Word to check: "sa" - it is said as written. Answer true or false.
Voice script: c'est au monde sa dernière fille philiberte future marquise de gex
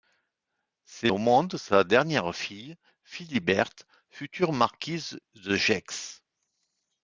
true